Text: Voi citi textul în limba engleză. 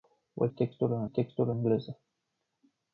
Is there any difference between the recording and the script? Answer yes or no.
yes